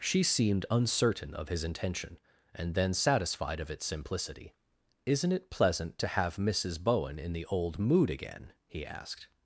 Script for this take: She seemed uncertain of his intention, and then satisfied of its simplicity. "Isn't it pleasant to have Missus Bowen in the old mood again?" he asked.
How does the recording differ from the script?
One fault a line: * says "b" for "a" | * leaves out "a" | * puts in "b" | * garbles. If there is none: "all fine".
all fine